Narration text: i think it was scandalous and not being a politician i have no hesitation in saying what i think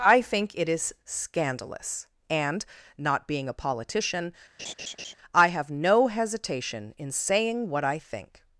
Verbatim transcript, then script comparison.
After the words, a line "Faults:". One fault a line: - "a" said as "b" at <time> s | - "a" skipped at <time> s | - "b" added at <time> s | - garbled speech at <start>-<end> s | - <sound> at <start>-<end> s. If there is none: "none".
i think it is scandalous and not being a politician i have no hesitation in saying what i think
Faults:
- "was" said as "is" at 0.7 s
- laugh at 4.6-5.1 s